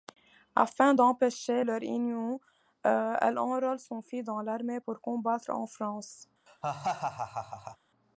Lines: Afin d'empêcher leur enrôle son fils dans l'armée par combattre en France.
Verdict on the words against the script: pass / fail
fail